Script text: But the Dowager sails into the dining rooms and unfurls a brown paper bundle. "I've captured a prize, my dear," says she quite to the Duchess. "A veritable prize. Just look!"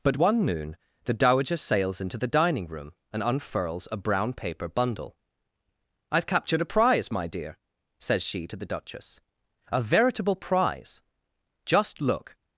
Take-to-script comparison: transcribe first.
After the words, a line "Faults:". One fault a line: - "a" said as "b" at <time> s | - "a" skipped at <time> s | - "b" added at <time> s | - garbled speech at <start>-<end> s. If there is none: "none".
But one noon the Dowager sails into the dining room and unfurls a brown paper bundle. "I've captured a prize, my dear," says she to the Duchess. "A veritable prize. Just look!"
Faults:
- "one noon" added at 0.1 s
- "rooms" said as "room" at 2.7 s
- "quite" skipped at 8.5 s